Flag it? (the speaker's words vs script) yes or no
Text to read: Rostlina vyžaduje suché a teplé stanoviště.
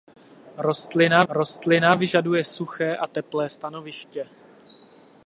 yes